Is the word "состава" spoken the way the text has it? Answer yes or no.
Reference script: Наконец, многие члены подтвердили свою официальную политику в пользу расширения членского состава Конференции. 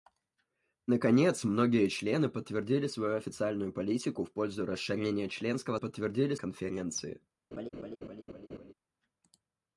no